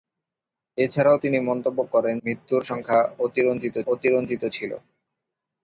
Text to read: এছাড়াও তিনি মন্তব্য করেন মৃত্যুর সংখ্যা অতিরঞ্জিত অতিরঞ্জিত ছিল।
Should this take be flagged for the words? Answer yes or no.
no